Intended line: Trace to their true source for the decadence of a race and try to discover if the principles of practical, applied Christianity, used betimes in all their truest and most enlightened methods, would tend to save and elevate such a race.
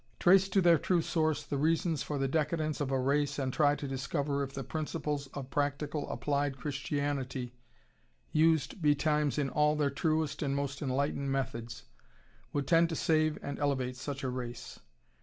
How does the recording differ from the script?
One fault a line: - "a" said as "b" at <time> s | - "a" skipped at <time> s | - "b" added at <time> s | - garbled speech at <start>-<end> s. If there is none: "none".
- "the reasons" added at 1.4 s